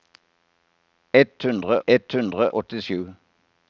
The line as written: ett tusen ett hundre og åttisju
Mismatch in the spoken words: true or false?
true